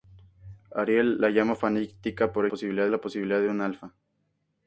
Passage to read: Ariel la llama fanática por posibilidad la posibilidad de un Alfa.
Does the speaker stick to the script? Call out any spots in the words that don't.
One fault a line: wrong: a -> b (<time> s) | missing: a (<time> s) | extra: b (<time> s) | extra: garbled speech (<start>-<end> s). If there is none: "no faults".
no faults